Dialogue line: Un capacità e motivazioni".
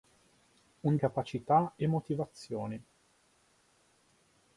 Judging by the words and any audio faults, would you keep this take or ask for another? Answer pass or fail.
pass